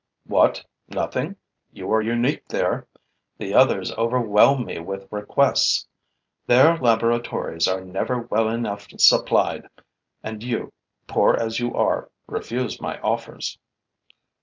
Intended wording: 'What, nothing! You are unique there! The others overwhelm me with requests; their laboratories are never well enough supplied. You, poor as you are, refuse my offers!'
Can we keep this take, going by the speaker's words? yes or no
no